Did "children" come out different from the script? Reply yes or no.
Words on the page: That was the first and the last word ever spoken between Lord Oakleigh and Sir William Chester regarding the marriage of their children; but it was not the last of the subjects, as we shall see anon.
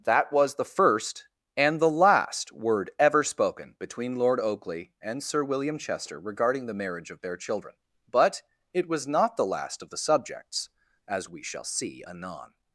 no